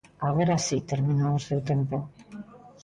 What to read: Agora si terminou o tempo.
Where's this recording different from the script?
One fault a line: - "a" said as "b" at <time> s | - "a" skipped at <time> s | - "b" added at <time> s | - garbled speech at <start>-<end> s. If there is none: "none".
- "seu" added at 1.5 s